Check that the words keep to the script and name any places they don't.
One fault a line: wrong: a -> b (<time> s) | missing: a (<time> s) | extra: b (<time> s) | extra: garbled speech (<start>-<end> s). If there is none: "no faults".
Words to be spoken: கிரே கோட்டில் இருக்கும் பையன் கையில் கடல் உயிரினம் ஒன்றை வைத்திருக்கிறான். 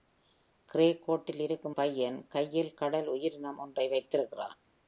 no faults